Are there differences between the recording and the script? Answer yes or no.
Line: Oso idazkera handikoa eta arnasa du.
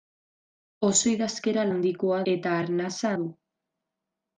no